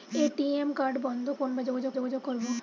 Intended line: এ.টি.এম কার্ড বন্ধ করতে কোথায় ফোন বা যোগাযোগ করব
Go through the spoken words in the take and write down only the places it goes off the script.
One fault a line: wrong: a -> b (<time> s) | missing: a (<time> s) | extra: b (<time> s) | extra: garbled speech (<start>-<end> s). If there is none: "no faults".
missing: করতে কোথায় (1.3 s)
extra: যোগাযোগ (1.9 s)